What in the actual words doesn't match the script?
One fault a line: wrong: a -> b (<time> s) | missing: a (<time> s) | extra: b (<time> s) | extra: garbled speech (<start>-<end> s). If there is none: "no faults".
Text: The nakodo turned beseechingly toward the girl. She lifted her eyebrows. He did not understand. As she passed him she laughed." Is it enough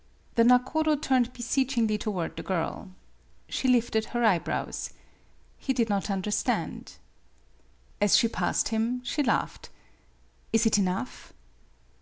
no faults